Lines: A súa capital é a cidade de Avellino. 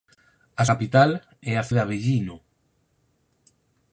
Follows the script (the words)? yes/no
no